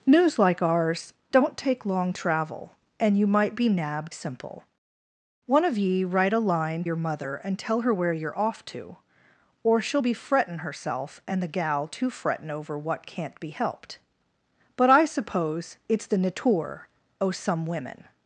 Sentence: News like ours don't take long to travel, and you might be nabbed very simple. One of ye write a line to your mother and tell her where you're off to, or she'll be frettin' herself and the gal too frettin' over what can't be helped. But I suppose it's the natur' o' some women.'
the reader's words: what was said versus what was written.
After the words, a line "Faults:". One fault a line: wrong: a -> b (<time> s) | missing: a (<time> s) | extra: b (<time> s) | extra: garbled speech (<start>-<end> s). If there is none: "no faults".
News like ours don't take long travel, and you might be nabbed simple. One of ye write a line your mother and tell her where you're off to, or she'll be frettin' herself and the gal too frettin' over what can't be helped. But I suppose it's the natur' o' some women.'
Faults:
missing: to (2.1 s)
missing: very (4.1 s)
missing: to (6.9 s)